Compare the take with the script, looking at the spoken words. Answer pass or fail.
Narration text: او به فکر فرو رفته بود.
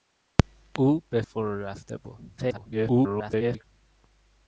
fail